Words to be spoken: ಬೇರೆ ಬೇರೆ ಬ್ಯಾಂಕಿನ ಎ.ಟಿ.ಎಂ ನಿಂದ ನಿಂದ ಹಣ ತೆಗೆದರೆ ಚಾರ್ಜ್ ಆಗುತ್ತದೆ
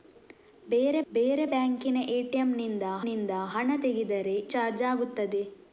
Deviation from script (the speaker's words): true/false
false